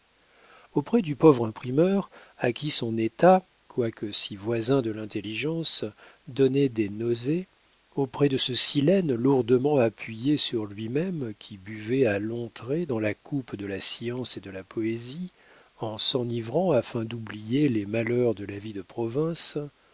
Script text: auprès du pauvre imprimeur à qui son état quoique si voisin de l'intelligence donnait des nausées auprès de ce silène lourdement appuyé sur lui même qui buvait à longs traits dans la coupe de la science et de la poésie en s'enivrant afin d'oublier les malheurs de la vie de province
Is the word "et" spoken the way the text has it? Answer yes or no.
yes